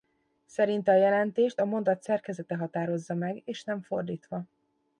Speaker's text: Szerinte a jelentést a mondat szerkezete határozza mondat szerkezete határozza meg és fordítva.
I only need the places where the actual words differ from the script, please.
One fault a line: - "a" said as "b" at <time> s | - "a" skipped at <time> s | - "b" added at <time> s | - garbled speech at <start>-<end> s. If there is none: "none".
- "mondat szerkezete határozza" skipped at 3.1 s
- "nem" added at 3.6 s